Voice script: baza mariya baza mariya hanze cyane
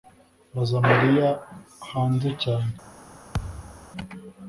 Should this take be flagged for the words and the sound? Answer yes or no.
yes